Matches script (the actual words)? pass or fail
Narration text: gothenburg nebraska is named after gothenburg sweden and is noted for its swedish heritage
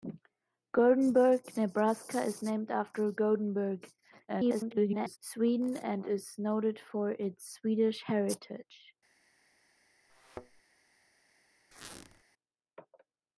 fail